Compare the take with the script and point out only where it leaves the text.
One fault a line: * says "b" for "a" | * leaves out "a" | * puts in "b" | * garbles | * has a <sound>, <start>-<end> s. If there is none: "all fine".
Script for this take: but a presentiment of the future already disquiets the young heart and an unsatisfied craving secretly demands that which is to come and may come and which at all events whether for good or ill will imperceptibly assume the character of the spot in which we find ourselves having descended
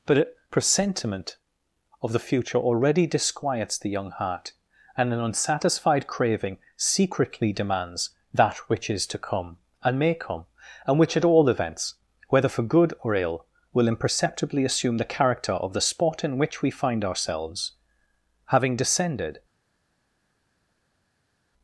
all fine